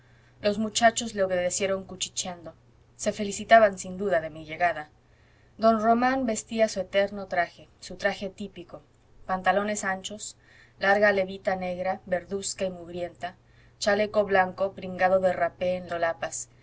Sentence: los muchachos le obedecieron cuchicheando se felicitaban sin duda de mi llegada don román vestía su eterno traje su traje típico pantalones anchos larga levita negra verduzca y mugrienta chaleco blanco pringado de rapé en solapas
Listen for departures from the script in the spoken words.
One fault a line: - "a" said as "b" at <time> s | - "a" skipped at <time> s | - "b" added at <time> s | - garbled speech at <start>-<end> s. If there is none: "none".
none